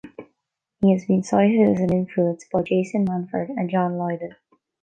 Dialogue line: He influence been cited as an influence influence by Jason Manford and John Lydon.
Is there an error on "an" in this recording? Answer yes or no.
no